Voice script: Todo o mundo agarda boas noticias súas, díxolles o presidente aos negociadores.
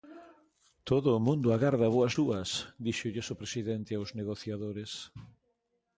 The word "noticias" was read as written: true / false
false